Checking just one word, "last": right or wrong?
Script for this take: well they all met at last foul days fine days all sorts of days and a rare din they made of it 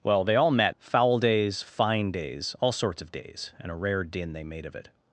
wrong